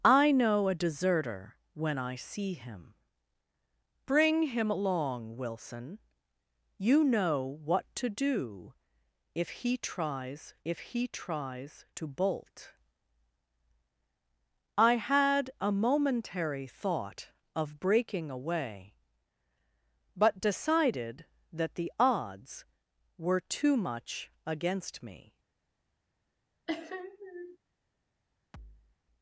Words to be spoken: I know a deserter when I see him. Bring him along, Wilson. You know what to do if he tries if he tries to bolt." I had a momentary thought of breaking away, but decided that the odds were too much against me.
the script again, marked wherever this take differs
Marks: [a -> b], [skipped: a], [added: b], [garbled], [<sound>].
I know a deserter when I see him. Bring him along, Wilson. You know what to do if he tries if he tries to bolt." I had a momentary thought of breaking away, but decided that the odds were too much against me. [sniff] [thud]